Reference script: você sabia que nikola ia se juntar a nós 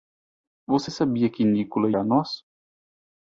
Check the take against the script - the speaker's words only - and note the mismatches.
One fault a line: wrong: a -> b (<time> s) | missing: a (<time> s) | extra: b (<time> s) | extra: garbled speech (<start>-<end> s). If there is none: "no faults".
missing: ia se juntar (1.9 s)